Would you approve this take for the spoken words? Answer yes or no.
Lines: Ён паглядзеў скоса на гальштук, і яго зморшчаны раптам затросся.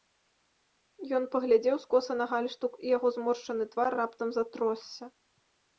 no